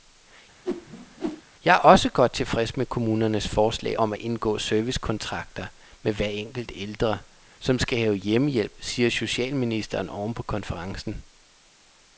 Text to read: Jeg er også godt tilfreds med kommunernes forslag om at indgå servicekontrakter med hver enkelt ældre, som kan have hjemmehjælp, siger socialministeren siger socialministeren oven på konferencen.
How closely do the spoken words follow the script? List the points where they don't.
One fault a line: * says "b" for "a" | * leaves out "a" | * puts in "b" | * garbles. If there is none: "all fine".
* says "skal" for "kan"
* leaves out "siger socialministeren"